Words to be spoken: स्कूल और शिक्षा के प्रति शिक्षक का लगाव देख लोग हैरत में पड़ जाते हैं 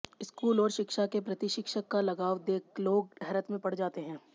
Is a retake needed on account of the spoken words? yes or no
no